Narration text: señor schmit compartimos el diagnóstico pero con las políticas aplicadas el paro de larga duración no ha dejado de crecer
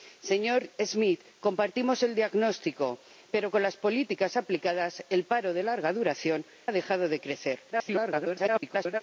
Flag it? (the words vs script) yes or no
yes